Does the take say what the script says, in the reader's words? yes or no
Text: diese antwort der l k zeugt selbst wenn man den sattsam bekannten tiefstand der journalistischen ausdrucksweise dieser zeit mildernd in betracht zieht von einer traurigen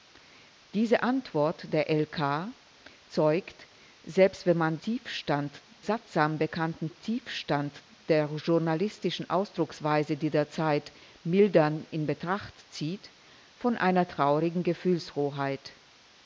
no